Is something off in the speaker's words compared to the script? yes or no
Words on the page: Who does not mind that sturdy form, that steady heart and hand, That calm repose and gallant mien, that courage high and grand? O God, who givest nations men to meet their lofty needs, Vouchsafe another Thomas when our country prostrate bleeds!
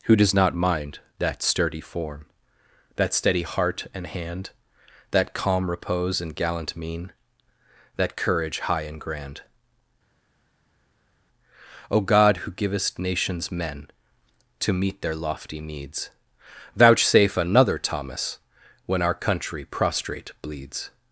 no